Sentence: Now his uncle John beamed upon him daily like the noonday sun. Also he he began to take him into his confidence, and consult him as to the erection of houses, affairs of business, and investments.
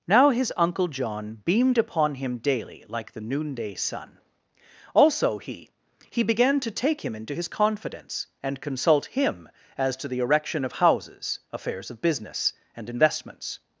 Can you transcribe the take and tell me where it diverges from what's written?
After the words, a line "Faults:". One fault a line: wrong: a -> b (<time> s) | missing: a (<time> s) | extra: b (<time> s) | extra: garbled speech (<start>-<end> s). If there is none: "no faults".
Now his uncle John beamed upon him daily like the noonday sun. Also he he began to take him into his confidence, and consult him as to the erection of houses, affairs of business, and investments.
Faults:
no faults